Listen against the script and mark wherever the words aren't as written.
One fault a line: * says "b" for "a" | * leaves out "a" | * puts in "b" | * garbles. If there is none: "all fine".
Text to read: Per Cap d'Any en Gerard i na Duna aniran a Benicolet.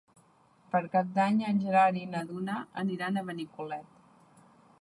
all fine